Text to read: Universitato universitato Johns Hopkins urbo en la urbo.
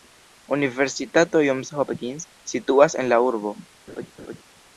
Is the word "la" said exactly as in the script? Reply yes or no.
yes